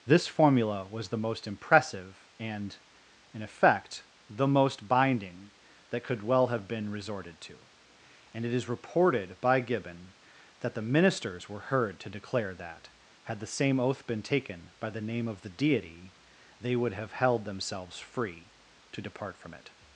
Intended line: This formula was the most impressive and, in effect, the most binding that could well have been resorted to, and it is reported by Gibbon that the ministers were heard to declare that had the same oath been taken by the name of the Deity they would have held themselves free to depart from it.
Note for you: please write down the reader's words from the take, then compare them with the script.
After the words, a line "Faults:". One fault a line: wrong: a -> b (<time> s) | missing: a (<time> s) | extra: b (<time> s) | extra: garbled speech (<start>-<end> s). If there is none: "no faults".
This formula was the most impressive and, in effect, the most binding that could well have been resorted to, and it is reported by Gibbon that the ministers were heard to declare that had the same oath been taken by the name of the Deity they would have held themselves free to depart from it.
Faults:
no faults